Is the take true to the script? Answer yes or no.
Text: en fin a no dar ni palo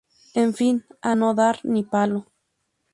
yes